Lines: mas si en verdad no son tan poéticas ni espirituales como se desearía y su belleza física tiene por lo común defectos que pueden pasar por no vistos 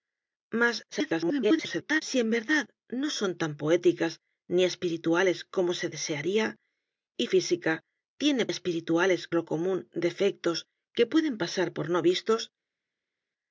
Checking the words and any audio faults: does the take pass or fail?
fail